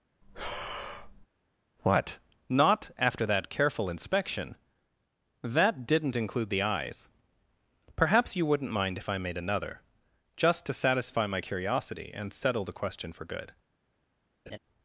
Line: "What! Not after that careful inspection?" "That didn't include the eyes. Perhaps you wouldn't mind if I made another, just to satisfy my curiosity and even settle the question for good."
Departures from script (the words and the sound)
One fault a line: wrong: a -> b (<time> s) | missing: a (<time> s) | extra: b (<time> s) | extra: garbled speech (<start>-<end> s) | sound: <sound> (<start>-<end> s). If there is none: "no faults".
sound: breath (0.2-1.3 s)
missing: even (12.3 s)
sound: laugh (14.5-14.6 s)